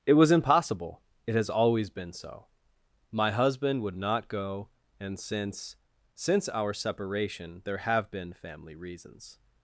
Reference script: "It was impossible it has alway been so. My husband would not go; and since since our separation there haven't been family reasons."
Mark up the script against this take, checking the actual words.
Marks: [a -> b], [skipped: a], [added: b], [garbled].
"It was impossible it has [alway -> always] been so. My husband would not go; and since since our separation there [haven't -> have] been family reasons."